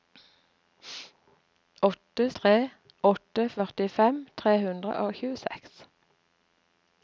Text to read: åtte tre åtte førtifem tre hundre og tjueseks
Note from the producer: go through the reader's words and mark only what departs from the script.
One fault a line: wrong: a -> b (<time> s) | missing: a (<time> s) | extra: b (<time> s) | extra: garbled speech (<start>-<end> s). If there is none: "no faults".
no faults